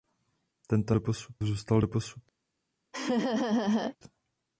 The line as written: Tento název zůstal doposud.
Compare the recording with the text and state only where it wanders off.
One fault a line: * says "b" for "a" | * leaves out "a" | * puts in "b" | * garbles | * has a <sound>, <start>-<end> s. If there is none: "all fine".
* says "doposud" for "název"
* has a laugh, 2.9-4.0 s